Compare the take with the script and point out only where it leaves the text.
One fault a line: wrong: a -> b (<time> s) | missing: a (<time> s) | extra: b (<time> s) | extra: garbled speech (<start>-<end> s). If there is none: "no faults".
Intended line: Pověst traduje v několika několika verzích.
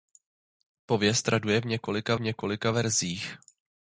no faults